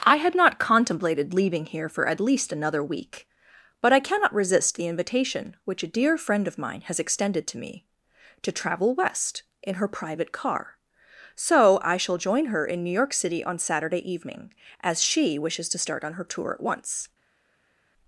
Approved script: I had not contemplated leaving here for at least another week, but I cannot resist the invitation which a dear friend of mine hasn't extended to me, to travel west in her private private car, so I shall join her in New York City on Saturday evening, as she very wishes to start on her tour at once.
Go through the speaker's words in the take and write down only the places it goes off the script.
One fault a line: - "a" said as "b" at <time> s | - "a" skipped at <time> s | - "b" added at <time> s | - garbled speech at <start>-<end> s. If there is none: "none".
- "hasn't" said as "has" at 6.8 s
- "private" skipped at 10.3 s
- "very" skipped at 15.4 s